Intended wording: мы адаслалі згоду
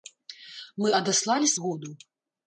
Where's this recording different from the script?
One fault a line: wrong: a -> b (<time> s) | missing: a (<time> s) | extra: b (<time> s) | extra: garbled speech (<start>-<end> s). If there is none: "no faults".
no faults